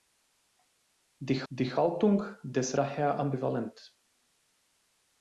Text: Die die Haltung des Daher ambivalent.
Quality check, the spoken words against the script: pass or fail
pass